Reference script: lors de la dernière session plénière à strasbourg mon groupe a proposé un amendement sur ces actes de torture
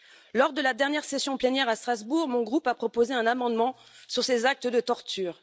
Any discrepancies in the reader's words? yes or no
no